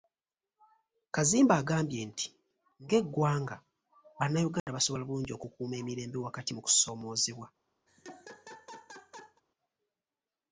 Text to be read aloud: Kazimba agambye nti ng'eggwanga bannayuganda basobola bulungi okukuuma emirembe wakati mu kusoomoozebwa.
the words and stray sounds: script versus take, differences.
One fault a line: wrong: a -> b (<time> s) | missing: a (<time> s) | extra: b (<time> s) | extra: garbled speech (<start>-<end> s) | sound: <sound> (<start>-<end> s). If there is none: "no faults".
sound: dropout (4.6-4.7 s)
sound: laugh (7.9-9.4 s)